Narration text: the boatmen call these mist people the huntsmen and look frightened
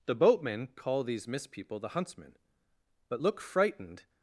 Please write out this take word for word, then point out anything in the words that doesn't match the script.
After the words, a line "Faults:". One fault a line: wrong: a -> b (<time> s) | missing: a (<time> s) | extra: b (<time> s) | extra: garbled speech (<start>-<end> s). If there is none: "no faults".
the boatmen call these mist people the huntsmen but look frightened
Faults:
wrong: and -> but (3.1 s)